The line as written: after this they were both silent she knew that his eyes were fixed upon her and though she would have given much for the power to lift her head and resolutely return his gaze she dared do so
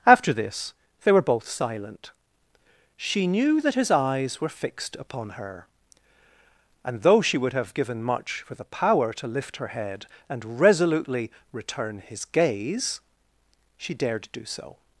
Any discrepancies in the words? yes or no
no